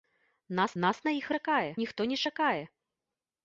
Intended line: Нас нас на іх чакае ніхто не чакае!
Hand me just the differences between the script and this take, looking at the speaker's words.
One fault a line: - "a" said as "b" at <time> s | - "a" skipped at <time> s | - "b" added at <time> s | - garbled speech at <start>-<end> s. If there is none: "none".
none